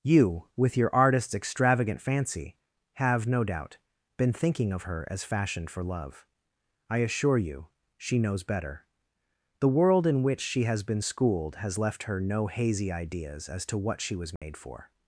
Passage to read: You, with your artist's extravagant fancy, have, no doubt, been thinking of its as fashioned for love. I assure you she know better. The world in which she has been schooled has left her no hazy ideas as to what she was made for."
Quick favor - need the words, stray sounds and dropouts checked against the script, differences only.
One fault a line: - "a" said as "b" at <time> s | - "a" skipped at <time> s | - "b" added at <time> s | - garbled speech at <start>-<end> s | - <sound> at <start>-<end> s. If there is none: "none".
- "its" said as "her" at 4.8 s
- "know" said as "knows" at 8.2 s
- dropout at 14.4-14.4 s